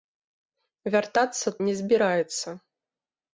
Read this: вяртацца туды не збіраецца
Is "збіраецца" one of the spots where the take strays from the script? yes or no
no